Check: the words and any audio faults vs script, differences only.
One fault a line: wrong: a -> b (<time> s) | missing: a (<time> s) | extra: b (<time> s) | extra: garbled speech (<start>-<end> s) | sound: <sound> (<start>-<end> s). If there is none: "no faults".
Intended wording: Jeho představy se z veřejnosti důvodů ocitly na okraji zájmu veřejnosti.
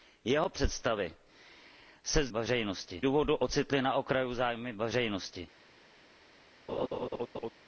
sound: laugh (6.7-7.5 s)